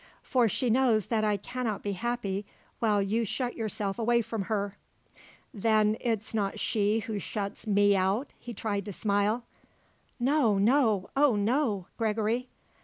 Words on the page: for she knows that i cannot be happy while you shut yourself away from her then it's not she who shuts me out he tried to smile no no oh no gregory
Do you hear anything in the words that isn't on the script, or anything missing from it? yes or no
no